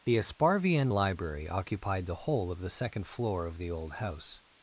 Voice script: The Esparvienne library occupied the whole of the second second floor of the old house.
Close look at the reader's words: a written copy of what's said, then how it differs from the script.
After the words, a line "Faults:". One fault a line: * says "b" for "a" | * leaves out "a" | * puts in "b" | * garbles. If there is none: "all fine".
The Esparvienne library occupied the whole of the second floor of the old house.
Faults:
* leaves out "second"